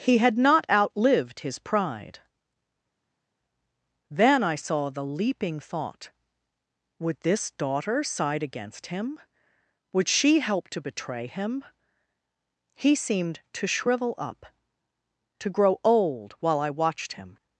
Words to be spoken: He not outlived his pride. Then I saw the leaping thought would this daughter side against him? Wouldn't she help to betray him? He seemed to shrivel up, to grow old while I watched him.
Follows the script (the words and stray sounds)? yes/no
no